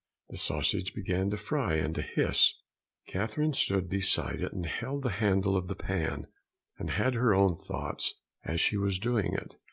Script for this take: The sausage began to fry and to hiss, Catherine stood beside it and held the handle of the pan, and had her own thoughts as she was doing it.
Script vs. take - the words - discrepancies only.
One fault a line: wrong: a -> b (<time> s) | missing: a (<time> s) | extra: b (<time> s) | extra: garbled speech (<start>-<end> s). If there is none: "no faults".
no faults